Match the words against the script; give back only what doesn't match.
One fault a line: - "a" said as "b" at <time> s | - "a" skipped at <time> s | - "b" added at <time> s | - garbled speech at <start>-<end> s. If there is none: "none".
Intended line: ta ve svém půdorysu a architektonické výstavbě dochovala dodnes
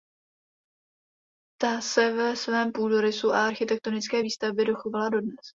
- "se" added at 1.8 s